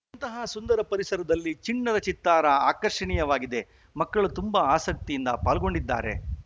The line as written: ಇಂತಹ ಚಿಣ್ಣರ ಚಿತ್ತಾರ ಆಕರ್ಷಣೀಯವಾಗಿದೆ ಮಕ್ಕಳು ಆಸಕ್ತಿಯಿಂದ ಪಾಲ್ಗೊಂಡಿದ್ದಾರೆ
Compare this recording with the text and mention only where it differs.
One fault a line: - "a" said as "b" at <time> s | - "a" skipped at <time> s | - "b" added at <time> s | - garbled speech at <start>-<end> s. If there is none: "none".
- "ಸುಂದರ ಪರಿಸರದಲ್ಲಿ" added at 0.5 s
- "ತುಂಬಾ" added at 4.4 s